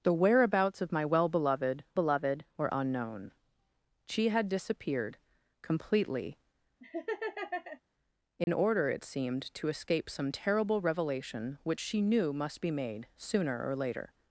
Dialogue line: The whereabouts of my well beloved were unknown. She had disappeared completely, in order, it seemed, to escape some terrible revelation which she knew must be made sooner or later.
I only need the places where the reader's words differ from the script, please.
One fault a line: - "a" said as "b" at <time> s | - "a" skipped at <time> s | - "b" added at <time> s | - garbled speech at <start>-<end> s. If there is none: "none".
- "beloved" added at 1.9 s